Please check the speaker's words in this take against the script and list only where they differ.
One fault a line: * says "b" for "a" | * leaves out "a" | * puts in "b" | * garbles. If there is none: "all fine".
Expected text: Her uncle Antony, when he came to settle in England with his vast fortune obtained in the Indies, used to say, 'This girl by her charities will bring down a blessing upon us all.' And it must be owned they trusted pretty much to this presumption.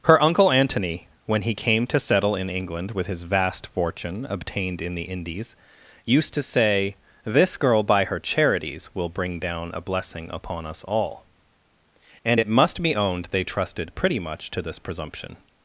all fine